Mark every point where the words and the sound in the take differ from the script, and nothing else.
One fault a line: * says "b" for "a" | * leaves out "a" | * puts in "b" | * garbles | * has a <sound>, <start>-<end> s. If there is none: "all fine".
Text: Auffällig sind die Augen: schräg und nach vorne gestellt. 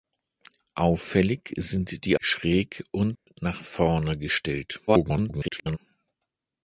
* leaves out "Augen"
* has a dropout, 3.1-3.3 s
* garbles